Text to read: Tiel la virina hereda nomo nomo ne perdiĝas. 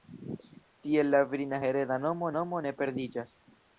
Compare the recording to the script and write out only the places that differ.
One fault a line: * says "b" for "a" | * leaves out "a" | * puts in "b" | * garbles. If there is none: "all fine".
all fine